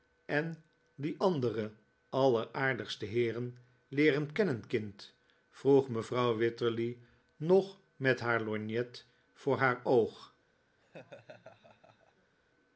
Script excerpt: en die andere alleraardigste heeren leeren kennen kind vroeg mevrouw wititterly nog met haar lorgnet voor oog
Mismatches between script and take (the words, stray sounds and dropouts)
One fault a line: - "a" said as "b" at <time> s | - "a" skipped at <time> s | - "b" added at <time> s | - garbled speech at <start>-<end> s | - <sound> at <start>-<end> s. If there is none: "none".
- "haar" added at 9.6 s
- laugh at 10.8-12.3 s